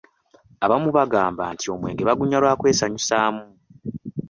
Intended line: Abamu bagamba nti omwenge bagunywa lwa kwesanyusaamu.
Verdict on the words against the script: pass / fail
pass